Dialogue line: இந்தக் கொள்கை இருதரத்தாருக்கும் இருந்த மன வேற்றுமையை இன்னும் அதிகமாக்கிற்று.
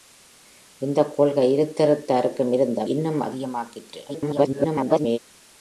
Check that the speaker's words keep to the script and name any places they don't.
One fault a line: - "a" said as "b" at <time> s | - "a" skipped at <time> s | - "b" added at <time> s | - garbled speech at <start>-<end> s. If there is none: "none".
- "மன வேற்றுமையை" skipped at 2.9 s
- garbled speech at 4.1-5.2 s